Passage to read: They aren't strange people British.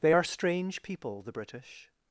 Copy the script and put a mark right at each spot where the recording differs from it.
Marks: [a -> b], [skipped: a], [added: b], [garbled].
They [aren't -> are] strange people [added: the] British.